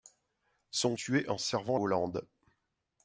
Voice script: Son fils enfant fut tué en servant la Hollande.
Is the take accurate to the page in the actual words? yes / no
no